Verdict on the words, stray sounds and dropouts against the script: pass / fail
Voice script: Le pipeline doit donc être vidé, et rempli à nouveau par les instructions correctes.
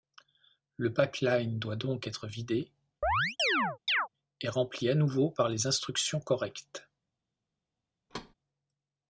fail